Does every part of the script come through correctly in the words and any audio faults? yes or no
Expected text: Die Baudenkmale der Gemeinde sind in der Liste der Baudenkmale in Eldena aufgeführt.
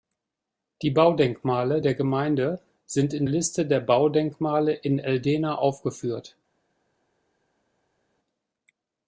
no